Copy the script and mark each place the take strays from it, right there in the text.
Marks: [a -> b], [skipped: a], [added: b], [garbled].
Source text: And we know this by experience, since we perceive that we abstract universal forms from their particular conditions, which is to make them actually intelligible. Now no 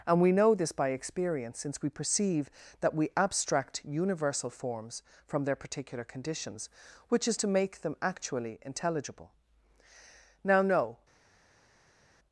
And we know this by experience, since we perceive that we abstract universal forms from their particular conditions, which is to make them actually intelligible. Now no